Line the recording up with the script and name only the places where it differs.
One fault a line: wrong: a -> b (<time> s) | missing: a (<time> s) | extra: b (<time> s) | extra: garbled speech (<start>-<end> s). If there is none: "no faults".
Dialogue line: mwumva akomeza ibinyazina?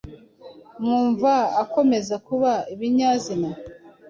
extra: kuba (2.3 s)